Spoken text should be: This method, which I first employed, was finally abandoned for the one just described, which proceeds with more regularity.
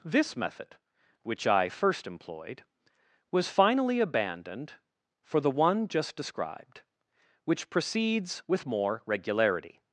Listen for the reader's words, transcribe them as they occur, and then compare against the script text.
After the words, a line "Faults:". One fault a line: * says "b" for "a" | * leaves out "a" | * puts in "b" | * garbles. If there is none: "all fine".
This method, which I first employed, was finally abandoned for the one just described, which proceeds with more regularity.
Faults:
all fine